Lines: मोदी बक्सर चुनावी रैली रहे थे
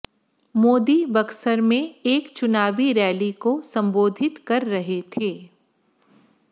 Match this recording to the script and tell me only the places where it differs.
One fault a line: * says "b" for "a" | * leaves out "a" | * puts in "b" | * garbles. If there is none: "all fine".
* puts in "में एक"
* puts in "को संबोधित कर"